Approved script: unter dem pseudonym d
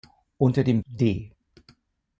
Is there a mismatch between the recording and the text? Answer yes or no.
yes